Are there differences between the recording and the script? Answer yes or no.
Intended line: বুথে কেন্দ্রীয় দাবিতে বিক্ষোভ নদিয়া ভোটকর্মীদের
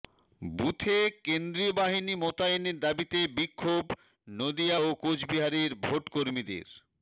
yes